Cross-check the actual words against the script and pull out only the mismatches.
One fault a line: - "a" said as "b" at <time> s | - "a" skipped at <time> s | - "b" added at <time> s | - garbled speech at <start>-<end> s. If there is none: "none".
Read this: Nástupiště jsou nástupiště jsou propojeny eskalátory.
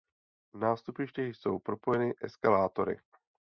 - "nástupiště jsou" skipped at 1.6 s